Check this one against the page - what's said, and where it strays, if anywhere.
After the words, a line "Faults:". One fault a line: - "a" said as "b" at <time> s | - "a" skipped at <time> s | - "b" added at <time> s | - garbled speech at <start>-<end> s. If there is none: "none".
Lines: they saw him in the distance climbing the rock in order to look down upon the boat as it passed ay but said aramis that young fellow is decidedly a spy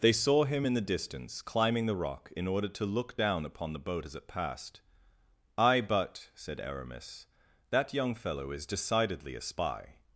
they saw him in the distance climbing the rock in order to look down upon the boat as it passed ay but said aramis that young fellow is decidedly a spy
Faults:
none